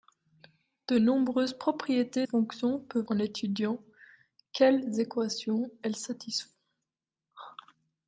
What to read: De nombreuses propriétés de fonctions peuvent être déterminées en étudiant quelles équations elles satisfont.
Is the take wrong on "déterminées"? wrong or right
wrong